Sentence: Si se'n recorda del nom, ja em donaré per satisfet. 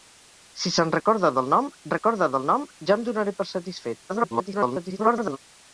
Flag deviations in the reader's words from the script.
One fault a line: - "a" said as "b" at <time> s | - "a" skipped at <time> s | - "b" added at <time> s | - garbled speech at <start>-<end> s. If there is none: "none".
- "recorda del nom" added at 1.9 s
- garbled speech at 4.1-5.4 s